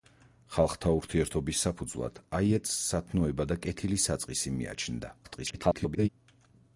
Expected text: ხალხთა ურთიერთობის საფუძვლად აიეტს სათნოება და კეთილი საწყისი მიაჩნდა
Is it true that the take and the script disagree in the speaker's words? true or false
true